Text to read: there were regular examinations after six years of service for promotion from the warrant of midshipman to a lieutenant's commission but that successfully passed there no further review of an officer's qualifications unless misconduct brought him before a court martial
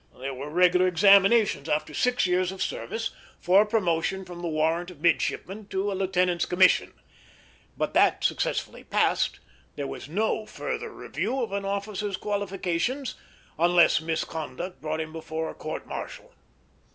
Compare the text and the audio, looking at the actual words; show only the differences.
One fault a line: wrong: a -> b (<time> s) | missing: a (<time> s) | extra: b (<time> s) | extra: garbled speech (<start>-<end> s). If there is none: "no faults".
extra: was (9.8 s)